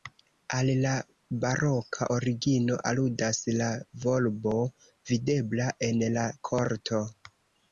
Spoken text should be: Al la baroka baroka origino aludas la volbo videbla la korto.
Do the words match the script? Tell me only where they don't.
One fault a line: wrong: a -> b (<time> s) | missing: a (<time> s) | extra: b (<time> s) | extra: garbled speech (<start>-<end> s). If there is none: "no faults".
missing: baroka (2.1 s)
extra: en (5.9 s)